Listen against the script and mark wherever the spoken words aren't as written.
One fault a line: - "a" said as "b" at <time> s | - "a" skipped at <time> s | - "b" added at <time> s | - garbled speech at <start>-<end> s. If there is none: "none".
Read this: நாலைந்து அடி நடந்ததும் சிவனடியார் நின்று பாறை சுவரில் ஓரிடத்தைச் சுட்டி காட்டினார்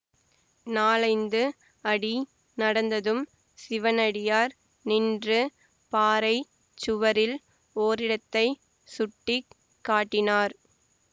none